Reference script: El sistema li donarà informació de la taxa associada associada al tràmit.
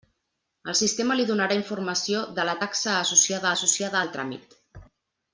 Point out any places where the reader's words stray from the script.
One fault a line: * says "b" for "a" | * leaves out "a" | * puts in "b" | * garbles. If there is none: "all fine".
all fine